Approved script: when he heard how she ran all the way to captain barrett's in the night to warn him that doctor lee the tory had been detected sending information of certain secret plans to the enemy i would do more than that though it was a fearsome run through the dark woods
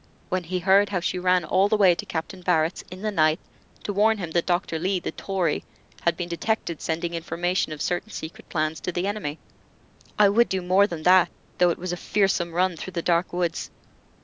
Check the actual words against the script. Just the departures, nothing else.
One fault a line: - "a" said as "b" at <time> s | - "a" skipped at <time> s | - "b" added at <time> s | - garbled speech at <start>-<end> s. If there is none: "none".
none